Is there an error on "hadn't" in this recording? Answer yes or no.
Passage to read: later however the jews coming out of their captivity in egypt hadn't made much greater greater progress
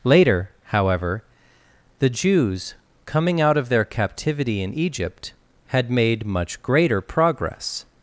yes